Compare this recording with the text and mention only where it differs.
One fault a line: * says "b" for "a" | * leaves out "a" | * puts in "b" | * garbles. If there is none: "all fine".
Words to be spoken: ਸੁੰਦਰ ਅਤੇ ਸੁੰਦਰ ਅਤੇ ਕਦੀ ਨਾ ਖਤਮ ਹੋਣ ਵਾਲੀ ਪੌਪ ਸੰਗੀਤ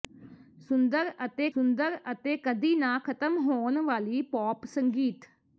all fine